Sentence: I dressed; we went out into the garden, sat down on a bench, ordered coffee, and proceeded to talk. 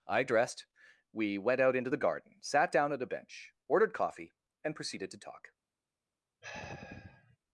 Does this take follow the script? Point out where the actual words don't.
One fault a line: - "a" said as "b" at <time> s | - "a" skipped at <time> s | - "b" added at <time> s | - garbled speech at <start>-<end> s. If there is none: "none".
- "on" said as "at" at 2.9 s